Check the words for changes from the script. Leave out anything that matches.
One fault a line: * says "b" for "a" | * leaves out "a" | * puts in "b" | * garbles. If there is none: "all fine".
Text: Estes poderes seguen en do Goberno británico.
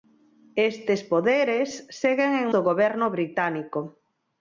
all fine